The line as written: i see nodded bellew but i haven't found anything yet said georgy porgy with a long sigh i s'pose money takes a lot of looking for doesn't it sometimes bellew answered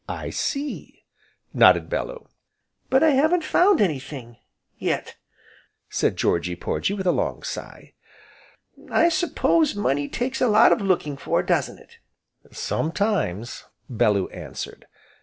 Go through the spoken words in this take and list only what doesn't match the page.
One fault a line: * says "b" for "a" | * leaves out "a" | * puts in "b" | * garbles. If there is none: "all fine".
all fine